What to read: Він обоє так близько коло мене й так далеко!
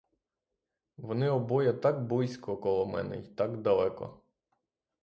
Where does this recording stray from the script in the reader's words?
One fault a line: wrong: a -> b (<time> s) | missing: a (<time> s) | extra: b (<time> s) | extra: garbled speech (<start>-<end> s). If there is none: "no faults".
wrong: Він -> Вони (1.0 s)